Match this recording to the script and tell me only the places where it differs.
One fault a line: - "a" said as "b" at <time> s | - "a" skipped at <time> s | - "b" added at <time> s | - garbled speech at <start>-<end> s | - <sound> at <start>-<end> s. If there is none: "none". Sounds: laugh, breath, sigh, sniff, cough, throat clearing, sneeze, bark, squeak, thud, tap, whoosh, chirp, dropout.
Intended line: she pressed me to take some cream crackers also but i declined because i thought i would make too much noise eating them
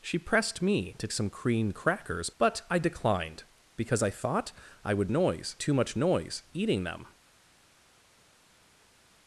- "take" skipped at 1.1 s
- "also" skipped at 2.3 s
- "make" said as "noise" at 5.1 s